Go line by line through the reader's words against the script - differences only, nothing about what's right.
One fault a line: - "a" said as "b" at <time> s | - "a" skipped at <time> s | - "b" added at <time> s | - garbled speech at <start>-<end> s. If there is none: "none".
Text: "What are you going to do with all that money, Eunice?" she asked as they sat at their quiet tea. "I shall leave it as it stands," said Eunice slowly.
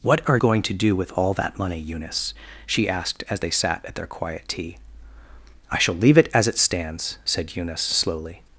- "you" skipped at 0.4 s